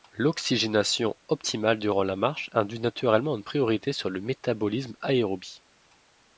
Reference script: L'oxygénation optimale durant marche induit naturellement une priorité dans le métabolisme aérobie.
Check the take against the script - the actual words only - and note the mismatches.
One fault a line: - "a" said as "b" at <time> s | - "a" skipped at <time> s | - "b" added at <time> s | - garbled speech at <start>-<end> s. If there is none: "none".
- "la" added at 2.0 s
- "dans" said as "sur" at 3.9 s